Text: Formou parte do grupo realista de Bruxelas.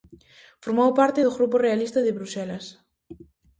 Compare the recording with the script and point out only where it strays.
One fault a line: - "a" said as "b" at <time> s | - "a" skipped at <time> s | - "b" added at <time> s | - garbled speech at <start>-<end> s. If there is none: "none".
none